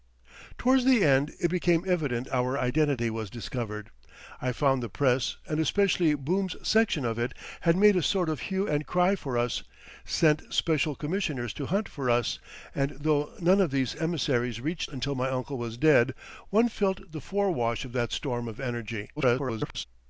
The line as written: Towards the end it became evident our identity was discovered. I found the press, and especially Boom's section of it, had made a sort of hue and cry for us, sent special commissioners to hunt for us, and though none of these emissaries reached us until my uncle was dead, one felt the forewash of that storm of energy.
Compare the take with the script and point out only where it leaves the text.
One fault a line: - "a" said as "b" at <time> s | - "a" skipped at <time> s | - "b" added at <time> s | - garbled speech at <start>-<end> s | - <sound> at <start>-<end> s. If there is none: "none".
- "us" skipped at 14.9 s
- garbled speech at 19.2-19.8 s